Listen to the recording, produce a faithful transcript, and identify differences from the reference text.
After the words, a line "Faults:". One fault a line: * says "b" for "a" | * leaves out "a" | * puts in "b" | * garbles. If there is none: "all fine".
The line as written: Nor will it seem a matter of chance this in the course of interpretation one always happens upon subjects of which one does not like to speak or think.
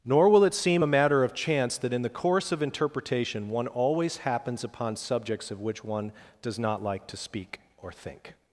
Nor will it seem a matter of chance that in the course of interpretation one always happens upon subjects of which one does not like to speak or think.
Faults:
* says "that" for "this"